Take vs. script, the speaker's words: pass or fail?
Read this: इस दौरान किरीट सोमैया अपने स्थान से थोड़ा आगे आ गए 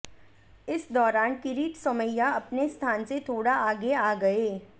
pass